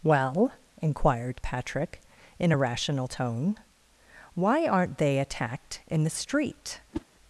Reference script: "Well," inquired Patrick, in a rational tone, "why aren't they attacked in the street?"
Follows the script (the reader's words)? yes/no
yes